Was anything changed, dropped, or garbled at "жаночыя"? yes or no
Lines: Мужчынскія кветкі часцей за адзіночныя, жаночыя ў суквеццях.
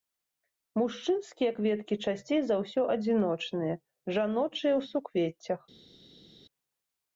no